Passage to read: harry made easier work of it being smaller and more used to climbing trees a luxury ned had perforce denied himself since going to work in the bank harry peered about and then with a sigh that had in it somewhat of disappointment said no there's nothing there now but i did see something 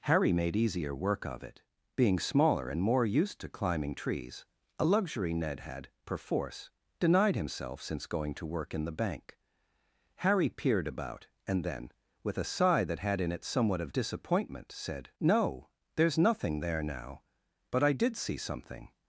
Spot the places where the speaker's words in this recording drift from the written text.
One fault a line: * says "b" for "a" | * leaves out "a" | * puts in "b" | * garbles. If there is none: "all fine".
all fine